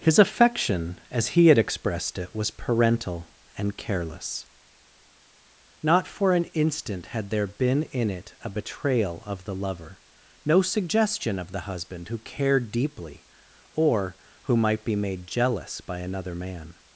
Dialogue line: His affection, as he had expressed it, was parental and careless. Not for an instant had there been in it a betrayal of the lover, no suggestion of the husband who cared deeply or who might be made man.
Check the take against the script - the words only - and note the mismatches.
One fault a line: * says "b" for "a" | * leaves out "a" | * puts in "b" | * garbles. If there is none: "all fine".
* puts in "jealous by another"